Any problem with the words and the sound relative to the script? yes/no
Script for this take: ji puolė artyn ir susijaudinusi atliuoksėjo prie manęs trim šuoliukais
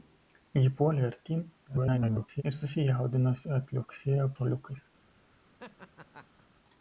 yes